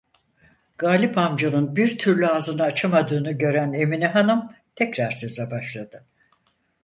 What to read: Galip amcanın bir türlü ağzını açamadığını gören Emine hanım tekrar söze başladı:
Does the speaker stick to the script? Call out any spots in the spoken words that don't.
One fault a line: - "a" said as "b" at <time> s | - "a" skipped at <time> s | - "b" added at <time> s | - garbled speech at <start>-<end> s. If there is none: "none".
none